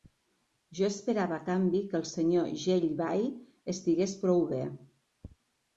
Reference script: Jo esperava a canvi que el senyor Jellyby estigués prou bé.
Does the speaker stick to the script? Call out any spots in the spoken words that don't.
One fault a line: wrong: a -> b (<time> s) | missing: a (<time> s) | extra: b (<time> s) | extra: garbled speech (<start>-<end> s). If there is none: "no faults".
no faults